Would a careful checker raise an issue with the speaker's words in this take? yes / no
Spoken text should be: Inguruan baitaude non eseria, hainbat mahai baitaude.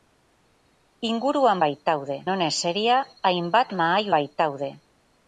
no